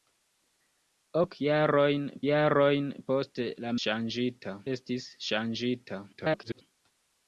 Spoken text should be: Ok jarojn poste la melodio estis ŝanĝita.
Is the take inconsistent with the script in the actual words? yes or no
yes